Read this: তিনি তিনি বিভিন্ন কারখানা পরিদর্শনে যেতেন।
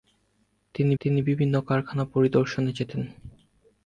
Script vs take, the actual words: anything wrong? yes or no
no